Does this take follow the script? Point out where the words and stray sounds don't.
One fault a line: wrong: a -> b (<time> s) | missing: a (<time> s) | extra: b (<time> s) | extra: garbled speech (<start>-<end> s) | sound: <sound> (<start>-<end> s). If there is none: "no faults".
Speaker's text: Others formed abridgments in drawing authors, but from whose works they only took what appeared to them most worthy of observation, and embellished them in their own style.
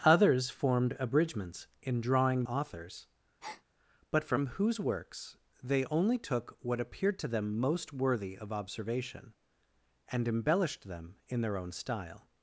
sound: breath (3.4-3.6 s)